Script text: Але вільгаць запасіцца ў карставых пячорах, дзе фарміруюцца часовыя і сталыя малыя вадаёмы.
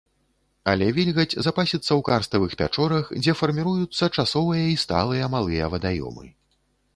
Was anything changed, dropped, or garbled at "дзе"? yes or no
no